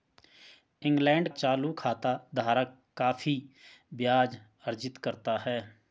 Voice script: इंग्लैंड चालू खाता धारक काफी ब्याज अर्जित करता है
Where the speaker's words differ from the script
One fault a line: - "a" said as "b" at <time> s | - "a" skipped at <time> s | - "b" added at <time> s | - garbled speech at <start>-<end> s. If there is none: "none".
none